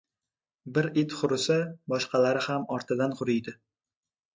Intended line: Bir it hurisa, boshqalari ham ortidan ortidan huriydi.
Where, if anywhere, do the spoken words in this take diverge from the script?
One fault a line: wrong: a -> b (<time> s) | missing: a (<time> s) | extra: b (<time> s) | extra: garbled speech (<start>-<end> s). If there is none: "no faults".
missing: ortidan (3.2 s)